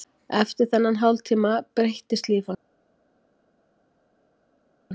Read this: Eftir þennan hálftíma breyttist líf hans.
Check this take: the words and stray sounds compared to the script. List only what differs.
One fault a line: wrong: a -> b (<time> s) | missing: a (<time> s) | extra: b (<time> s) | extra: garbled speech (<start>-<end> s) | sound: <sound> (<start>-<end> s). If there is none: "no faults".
no faults